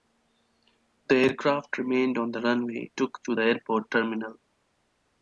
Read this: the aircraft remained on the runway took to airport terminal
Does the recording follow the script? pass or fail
pass